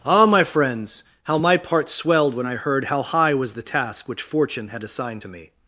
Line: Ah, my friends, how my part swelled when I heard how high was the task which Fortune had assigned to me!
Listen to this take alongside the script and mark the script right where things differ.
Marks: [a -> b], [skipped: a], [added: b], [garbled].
Ah, my friends, how my part swelled when I heard how high was the task which Fortune had assigned to me!